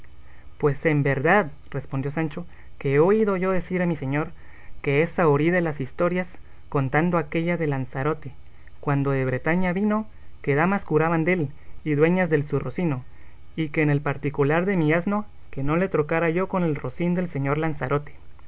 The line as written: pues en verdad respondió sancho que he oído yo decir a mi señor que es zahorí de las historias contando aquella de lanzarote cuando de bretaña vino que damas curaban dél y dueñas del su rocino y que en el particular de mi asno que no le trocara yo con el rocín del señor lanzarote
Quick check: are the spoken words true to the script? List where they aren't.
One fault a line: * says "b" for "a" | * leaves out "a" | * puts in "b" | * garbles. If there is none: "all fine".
all fine